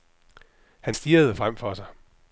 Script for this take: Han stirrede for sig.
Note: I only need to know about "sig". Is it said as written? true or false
true